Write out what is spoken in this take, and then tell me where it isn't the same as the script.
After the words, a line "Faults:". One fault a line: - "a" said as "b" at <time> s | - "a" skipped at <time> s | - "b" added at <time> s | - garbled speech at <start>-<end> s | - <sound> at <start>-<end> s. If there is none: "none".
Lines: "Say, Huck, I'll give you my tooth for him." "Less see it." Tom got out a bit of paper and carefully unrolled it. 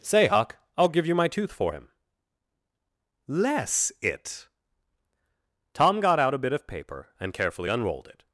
"Say, Huck, I'll give you my tooth for him." "Less it." Tom got out a bit of paper and carefully unrolled it.
Faults:
- "see" skipped at 3.9 s